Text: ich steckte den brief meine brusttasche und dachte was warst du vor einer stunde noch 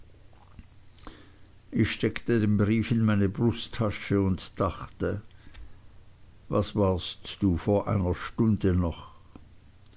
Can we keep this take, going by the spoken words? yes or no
no